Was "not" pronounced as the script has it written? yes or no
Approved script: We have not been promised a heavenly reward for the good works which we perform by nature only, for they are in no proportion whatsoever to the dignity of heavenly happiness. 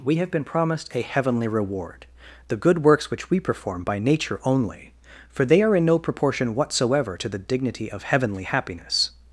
no